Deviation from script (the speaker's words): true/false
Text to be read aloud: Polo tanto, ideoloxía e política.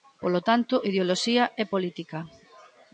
false